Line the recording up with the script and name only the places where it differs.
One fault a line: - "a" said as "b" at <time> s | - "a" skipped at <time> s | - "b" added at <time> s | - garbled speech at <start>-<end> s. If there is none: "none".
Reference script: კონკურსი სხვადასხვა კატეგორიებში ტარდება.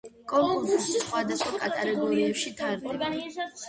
none